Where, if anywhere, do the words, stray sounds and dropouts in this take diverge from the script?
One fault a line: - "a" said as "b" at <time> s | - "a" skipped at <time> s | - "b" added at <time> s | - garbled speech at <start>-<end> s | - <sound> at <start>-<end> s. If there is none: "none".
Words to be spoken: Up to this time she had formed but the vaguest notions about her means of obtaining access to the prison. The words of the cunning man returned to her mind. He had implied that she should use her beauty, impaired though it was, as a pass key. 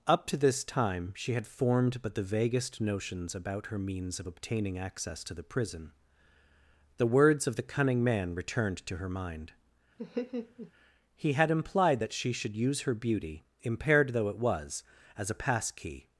- laugh at 10.0-10.7 s